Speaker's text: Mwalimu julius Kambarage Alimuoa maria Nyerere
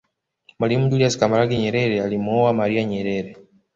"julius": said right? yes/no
yes